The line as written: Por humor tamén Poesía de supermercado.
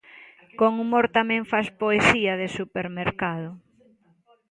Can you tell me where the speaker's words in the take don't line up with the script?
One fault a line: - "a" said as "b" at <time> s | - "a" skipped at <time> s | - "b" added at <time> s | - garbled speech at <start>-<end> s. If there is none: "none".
- "Por" said as "Con" at 0.6 s
- "fas" added at 1.5 s